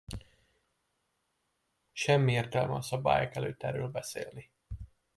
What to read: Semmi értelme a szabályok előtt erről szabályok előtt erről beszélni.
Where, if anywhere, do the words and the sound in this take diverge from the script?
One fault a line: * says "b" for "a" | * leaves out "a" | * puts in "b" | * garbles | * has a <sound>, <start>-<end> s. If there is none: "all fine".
* leaves out "szabályok előtt erről"